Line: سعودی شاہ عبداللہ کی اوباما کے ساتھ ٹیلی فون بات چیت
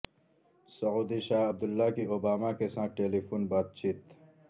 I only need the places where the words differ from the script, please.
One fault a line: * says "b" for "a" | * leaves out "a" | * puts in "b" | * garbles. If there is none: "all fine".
all fine